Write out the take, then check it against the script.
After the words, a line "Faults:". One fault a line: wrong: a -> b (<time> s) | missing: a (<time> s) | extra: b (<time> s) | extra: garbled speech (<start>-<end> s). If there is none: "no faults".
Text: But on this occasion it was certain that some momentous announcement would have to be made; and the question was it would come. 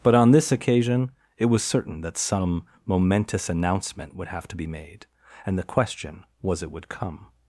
But on this occasion it was certain that some momentous announcement would have to be made; and the question was it would come.
Faults:
no faults